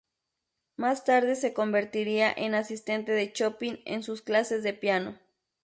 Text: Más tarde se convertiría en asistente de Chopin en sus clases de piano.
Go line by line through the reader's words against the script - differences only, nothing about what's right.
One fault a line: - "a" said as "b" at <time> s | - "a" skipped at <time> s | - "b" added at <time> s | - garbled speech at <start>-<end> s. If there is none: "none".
none